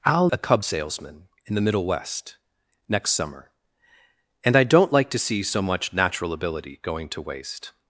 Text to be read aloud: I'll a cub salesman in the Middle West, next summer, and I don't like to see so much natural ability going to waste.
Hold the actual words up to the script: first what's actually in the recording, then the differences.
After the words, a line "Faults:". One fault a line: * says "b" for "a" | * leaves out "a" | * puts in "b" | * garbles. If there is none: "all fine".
I'll a cub salesman in the Middle West, next summer, and I don't like to see so much natural ability going to waste.
Faults:
all fine